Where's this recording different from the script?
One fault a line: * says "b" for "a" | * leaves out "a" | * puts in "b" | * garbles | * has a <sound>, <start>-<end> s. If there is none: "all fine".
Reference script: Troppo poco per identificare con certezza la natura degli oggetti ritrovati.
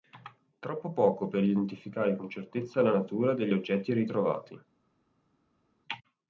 all fine